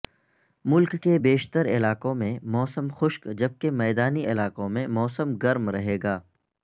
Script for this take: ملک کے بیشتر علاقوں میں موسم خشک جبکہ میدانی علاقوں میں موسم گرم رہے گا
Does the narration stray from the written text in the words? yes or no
no